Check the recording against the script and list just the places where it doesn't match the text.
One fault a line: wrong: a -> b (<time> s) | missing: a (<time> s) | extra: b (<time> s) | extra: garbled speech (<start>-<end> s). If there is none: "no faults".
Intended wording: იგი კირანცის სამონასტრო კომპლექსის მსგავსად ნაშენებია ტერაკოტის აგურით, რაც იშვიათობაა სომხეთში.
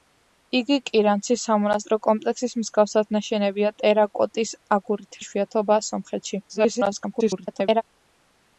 missing: რაც (5.2 s)
extra: garbled speech (6.5-7.8 s)